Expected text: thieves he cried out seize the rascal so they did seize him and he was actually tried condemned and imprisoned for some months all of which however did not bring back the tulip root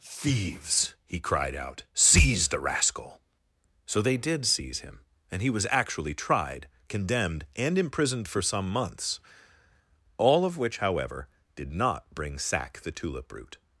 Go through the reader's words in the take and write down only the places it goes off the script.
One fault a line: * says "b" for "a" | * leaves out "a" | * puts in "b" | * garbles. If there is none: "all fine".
* says "sack" for "back"